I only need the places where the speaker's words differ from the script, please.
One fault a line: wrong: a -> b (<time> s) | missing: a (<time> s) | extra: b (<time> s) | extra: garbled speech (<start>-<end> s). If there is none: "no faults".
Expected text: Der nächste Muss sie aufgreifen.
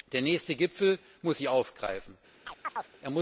extra: Gipfel (0.6 s)